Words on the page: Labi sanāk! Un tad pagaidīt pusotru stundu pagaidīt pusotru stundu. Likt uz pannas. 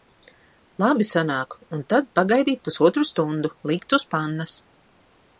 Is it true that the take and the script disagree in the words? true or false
true